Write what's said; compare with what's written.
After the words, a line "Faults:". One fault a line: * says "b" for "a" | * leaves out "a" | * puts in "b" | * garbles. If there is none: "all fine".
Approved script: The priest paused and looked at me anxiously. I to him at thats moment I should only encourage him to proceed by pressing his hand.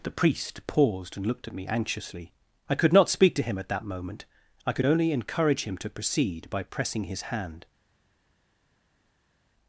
The priest paused and looked at me anxiously. I could not speak to him at that moment I could only encourage him to proceed by pressing his hand.
Faults:
* puts in "could not speak"
* says "that" for "thats"
* says "could" for "should"